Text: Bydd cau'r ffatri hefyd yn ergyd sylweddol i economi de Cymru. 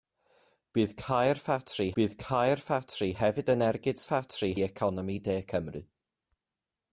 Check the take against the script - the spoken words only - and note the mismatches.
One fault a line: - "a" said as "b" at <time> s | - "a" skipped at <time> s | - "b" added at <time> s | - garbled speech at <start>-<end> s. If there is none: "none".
- "bydd cau'r ffatri" added at 2.0 s
- "sylweddol" said as "ffatri" at 4.0 s